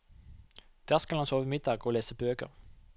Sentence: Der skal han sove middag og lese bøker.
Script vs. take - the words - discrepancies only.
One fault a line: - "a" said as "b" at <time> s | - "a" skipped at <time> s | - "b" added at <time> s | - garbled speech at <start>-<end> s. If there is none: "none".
none